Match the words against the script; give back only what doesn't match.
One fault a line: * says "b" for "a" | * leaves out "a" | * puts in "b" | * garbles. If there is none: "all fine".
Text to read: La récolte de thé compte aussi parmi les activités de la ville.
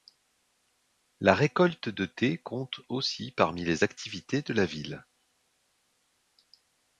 all fine